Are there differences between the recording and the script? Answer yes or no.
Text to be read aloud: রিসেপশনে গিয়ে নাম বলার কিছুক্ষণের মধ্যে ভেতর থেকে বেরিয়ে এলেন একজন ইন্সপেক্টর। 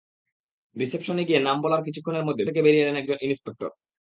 yes